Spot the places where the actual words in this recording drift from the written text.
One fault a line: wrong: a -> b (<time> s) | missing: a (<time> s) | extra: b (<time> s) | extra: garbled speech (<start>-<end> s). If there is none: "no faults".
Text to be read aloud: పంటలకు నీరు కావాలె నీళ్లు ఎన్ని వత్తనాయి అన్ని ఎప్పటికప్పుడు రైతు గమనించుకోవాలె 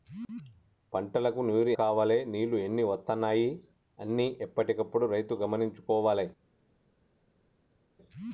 no faults